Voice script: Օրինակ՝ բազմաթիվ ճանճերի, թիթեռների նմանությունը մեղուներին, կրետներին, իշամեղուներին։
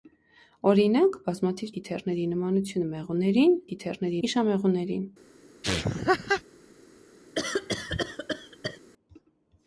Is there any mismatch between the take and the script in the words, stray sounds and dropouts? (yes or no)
yes